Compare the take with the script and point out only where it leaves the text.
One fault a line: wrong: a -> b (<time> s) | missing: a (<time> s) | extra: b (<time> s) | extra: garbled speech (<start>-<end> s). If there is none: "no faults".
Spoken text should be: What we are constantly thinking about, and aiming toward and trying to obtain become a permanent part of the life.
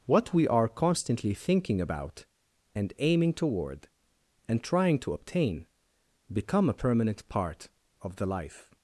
no faults